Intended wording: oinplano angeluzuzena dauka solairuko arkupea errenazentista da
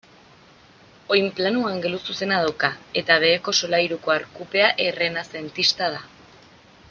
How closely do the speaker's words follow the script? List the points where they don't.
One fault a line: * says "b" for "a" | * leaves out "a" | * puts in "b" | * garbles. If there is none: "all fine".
* puts in "eta beheko"